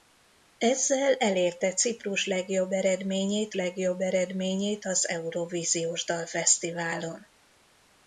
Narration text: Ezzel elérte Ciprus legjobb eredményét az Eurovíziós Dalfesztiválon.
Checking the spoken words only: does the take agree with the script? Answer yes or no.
no